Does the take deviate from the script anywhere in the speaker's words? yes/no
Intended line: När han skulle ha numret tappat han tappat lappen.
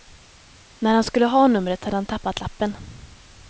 yes